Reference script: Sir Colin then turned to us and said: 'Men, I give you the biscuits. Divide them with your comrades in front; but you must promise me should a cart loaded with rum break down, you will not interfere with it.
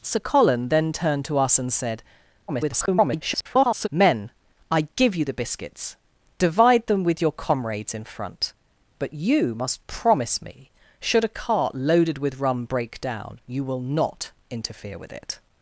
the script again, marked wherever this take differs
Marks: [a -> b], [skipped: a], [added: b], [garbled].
Sir Colin then turned to us and said: [garbled] 'Men, I give you the biscuits. Divide them with your comrades in front; but you must promise me should a cart loaded with rum break down, you will not interfere with it.